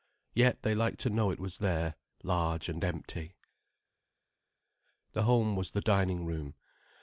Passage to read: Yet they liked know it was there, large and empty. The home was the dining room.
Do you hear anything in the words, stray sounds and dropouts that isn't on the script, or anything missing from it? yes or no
yes